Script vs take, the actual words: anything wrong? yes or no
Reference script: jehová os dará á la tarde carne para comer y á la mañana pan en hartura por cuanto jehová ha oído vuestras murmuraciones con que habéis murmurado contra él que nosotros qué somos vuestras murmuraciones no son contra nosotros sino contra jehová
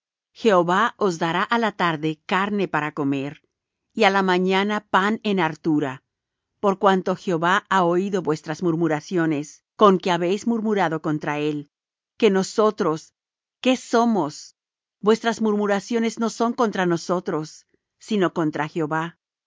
no